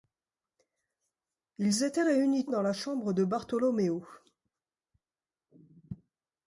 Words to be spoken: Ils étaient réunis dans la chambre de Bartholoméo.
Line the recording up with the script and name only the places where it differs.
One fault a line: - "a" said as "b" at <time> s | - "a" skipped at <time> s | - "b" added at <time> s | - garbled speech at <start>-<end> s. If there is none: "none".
none